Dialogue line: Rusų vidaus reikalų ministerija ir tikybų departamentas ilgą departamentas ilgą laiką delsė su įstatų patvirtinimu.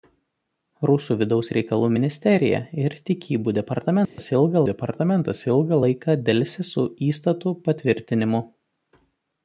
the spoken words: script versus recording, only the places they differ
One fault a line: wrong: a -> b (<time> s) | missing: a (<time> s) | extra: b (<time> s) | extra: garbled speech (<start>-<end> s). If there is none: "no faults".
no faults